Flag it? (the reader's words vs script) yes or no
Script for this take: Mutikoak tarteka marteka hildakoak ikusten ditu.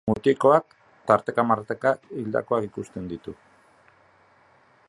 no